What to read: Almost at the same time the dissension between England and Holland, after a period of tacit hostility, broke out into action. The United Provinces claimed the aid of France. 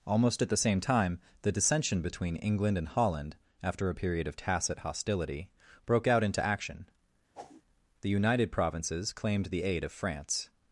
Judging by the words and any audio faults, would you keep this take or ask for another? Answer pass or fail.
fail